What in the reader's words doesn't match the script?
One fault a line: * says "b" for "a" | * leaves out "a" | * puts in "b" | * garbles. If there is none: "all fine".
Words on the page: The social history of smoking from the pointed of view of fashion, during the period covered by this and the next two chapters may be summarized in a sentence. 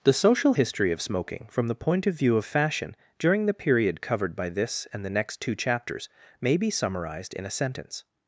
* says "point" for "pointed"